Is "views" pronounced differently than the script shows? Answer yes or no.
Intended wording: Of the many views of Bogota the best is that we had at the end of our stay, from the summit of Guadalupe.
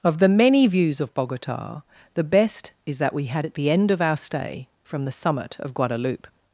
no